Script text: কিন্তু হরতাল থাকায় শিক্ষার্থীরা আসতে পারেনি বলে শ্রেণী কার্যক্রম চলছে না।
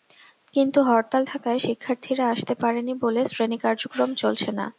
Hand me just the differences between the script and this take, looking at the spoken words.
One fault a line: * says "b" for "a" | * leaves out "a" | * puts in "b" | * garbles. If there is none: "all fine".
all fine